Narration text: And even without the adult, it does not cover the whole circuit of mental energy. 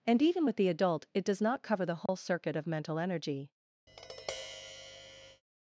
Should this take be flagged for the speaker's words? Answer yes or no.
yes